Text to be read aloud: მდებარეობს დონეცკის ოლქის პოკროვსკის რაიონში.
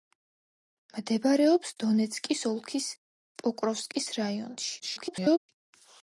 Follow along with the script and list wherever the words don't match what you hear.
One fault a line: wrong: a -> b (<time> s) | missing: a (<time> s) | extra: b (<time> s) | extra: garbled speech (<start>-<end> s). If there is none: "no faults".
extra: garbled speech (4.8-5.4 s)